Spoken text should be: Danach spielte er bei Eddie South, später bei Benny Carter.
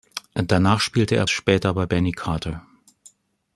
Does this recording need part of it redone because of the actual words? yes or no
yes